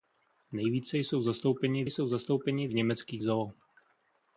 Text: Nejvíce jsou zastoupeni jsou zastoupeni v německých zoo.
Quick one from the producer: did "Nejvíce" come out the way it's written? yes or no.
yes